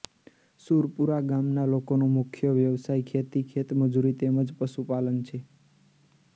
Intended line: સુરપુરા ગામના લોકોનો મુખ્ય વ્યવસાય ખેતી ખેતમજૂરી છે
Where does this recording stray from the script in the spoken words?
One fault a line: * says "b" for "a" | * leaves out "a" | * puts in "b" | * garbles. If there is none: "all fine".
* puts in "તેમ જ પશુપાલન"